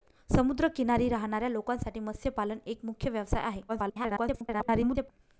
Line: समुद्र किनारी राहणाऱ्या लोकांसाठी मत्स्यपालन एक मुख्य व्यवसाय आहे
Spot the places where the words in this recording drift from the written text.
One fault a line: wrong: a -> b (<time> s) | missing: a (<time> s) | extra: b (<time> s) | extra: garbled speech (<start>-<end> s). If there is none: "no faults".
extra: garbled speech (3.7-5.1 s)